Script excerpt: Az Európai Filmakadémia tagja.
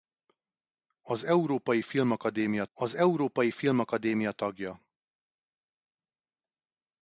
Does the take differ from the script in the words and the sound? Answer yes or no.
yes